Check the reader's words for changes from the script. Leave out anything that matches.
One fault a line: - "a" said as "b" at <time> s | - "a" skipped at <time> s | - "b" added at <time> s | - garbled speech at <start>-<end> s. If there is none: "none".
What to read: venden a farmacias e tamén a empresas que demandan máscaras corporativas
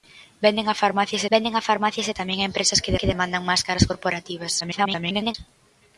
- "venden a farmacias" added at 1.3 s
- "que" added at 3.0 s
- garbled speech at 4.6-5.3 s